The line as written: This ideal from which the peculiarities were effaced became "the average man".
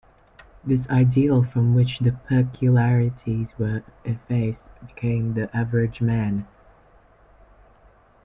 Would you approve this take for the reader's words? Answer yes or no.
yes